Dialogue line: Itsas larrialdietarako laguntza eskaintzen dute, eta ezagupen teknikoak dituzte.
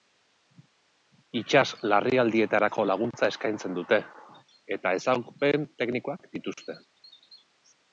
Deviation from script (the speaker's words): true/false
false